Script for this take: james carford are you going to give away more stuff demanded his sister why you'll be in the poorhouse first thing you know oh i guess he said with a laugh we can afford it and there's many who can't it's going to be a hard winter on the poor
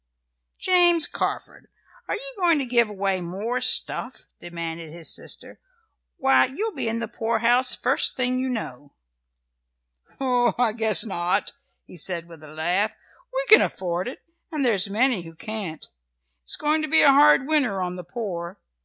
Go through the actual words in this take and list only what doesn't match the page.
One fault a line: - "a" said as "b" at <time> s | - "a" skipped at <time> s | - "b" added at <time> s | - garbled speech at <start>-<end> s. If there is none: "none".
- "not" added at 11.0 s